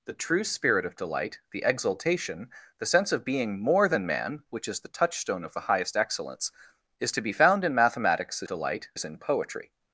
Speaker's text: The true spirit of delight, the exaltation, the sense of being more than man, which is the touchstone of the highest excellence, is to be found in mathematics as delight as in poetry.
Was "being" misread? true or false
false